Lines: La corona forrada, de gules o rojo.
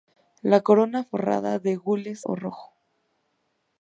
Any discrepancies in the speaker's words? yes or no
no